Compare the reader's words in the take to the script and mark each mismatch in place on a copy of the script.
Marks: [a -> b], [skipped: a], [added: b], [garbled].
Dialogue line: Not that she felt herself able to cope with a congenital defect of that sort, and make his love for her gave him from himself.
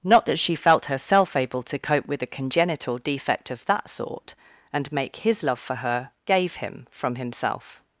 Not that she felt herself able to cope with a congenital defect of that sort, and make his love for her gave him from himself.